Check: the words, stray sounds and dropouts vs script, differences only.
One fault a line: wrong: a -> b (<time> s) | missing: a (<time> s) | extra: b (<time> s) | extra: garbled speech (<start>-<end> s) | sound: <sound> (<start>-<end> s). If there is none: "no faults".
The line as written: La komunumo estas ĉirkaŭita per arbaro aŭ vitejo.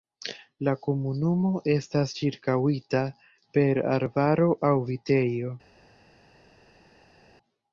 no faults